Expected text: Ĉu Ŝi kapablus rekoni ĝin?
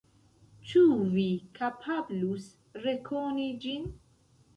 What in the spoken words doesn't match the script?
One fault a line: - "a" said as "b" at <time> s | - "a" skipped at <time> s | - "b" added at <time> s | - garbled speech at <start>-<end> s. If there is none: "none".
- "Ŝi" said as "Vi" at 1.1 s